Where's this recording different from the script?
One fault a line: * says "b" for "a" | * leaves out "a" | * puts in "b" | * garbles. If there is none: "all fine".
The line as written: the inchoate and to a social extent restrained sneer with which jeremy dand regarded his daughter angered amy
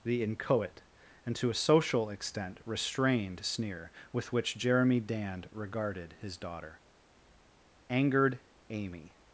all fine